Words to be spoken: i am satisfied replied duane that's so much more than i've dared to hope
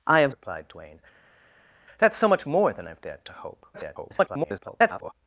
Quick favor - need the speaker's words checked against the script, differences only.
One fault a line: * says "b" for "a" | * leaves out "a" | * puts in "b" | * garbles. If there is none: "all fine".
* leaves out "satisfied"
* garbles